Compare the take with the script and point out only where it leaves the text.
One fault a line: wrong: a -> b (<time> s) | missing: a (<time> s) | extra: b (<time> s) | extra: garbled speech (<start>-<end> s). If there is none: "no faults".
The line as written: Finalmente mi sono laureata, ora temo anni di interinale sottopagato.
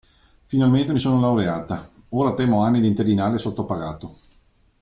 no faults